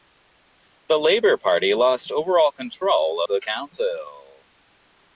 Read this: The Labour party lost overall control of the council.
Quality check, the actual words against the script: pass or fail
pass